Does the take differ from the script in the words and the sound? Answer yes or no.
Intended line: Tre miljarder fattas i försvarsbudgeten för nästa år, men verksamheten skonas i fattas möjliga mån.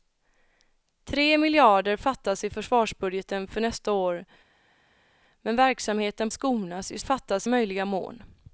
no